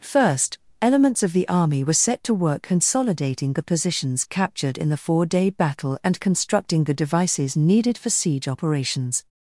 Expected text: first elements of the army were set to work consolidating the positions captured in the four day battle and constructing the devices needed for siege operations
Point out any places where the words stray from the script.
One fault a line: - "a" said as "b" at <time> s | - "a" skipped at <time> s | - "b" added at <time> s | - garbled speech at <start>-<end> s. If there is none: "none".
none